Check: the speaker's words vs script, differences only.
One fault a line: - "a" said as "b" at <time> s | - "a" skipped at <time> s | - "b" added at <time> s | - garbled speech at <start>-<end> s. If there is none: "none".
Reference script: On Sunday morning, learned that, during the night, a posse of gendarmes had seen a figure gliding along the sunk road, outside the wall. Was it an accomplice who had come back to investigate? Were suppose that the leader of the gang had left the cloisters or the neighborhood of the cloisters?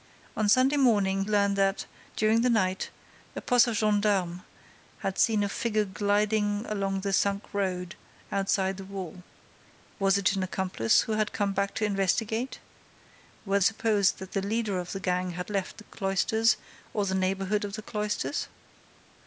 none